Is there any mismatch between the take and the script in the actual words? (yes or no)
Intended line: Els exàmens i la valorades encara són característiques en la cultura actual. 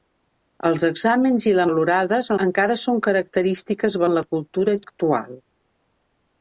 no